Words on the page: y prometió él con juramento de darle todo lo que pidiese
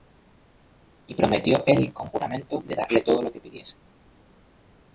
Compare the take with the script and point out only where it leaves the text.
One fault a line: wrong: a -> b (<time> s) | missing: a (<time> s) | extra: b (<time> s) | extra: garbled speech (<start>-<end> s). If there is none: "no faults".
no faults